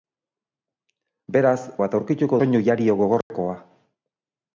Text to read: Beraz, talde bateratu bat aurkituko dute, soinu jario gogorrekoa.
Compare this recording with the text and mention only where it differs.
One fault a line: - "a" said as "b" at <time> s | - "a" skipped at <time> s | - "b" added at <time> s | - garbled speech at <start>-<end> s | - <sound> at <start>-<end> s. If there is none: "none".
- "talde bateratu" skipped at 1.6 s
- "dute" skipped at 2.4 s
- dropout at 3.2-3.3 s